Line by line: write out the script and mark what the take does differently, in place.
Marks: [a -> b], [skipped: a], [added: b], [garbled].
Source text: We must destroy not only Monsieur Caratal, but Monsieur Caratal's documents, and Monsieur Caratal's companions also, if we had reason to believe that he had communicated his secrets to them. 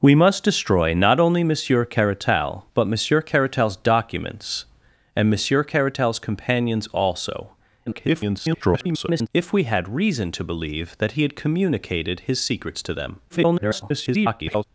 We must destroy not only Monsieur Caratal, but Monsieur Caratal's documents, and Monsieur Caratal's companions also, [garbled] if we had reason to believe that he had communicated his secrets to them. [garbled]